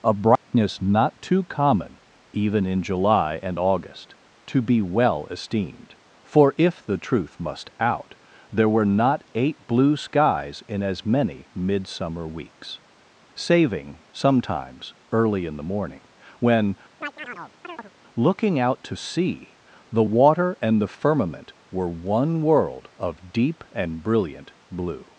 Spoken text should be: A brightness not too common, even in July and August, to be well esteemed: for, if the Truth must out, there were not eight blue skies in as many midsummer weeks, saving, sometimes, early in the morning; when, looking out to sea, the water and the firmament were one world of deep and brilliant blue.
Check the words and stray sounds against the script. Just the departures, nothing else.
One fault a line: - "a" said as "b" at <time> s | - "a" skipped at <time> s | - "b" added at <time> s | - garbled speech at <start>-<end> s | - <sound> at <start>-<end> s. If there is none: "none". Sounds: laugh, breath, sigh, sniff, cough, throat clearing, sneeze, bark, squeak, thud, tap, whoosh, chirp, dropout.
- dropout at 0.4-0.5 s
- chirp at 17.0-17.9 s